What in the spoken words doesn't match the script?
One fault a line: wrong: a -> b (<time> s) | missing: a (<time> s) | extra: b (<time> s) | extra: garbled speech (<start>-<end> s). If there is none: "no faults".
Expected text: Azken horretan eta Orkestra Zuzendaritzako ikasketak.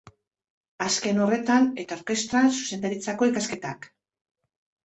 no faults